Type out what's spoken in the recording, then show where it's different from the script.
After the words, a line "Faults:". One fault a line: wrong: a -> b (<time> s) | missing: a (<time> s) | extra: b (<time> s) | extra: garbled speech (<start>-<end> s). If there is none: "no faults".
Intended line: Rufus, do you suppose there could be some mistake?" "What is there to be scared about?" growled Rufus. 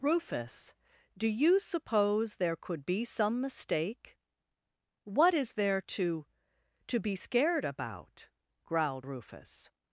Rufus, do you suppose there could be some mistake?" "What is there to to be scared about?" growled Rufus.
Faults:
extra: to (6.9 s)